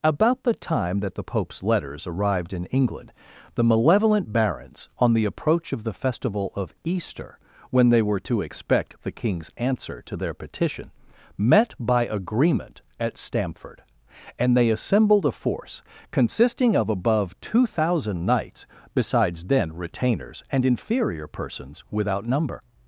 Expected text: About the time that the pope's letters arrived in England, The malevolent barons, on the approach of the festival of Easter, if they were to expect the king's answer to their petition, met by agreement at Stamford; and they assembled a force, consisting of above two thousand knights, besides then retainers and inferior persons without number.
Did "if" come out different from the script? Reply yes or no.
yes